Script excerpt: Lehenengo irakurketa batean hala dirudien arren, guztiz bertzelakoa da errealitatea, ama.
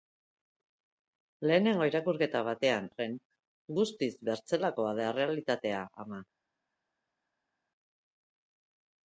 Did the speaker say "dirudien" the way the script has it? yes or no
no